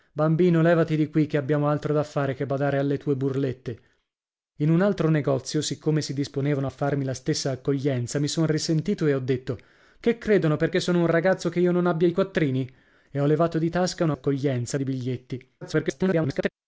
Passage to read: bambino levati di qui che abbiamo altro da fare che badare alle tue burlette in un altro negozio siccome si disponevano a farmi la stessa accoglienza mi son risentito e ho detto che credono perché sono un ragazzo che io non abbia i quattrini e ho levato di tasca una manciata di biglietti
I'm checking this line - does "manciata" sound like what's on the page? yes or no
no